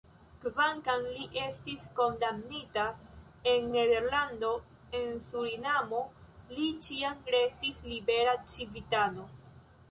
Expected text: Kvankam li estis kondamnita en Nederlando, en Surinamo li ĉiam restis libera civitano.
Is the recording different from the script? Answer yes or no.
no